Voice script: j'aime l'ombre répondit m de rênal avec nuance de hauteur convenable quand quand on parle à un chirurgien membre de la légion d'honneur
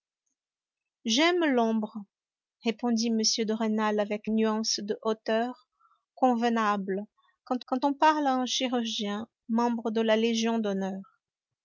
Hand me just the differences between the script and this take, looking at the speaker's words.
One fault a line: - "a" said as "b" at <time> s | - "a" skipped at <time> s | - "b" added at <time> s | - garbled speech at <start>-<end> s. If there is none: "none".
none